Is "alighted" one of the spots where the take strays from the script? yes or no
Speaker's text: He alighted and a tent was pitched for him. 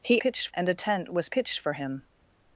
yes